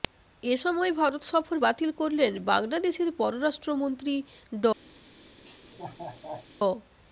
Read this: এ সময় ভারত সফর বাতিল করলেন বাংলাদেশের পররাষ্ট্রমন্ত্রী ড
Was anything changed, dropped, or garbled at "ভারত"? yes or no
no